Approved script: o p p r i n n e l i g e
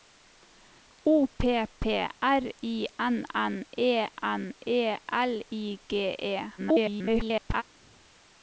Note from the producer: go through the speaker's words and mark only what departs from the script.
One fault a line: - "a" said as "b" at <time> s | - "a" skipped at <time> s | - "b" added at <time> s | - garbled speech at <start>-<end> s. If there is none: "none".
- "n e" added at 4.2 s
- garbled speech at 6.6-7.6 s